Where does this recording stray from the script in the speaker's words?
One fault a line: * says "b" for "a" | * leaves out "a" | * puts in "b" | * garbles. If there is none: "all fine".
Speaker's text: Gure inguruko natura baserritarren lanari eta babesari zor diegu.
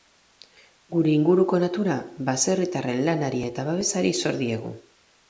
all fine